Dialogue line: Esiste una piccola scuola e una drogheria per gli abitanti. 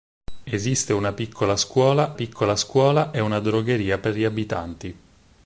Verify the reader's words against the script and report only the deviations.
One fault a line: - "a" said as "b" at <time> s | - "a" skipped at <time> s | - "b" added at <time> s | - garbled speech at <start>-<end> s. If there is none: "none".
- "piccola scuola" added at 2.1 s